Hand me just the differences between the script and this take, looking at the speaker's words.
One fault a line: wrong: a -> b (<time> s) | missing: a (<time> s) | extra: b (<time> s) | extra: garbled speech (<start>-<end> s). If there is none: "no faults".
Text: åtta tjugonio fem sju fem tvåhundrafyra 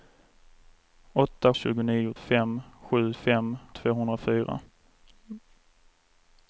no faults